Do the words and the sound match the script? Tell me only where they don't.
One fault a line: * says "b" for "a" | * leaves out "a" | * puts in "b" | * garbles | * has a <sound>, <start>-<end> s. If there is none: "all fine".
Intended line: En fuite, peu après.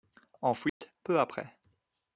* has a dropout, 0.7-0.8 s